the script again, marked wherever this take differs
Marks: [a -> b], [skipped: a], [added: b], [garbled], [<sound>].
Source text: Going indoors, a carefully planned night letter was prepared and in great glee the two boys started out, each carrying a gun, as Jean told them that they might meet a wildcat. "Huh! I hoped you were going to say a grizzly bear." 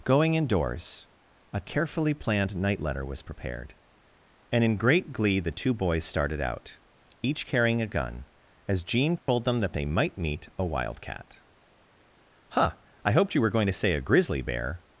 Going indoors, a carefully planned night letter was prepared and in great glee the two boys started out, each carrying a gun, as Jean told [dropout] them that they might meet a wildcat. "Huh! I hoped you were going to say a grizzly bear."